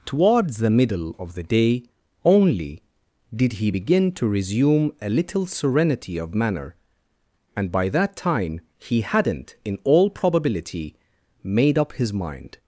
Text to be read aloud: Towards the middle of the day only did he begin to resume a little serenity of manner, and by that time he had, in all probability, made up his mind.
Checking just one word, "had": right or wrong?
wrong